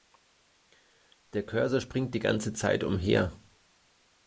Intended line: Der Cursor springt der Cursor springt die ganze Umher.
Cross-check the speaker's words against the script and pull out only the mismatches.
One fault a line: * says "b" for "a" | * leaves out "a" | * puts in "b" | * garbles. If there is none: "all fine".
* leaves out "der Cursor springt"
* puts in "Zeit"